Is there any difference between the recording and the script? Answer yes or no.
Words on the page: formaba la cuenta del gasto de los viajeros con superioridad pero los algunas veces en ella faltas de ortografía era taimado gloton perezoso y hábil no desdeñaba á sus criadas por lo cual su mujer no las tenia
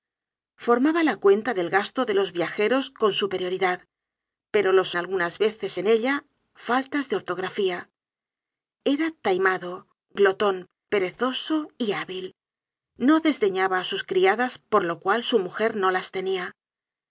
no